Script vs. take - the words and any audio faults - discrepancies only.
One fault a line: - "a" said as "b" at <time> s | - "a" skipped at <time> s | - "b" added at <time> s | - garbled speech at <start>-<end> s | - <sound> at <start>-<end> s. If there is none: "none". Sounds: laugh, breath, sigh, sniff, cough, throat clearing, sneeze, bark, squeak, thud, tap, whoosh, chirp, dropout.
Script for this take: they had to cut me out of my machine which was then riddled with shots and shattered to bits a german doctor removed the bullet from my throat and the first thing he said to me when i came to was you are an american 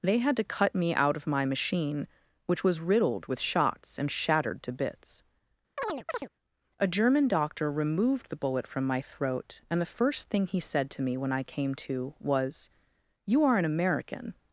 - "then" skipped at 2.8 s
- chirp at 5.8-6.3 s